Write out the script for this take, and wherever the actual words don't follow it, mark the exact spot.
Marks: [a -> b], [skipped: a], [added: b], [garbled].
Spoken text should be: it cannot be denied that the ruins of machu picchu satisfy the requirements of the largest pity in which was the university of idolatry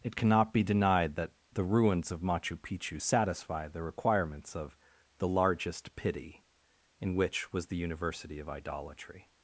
it cannot be denied that the ruins of machu picchu satisfy the requirements of the largest pity in which was the university of idolatry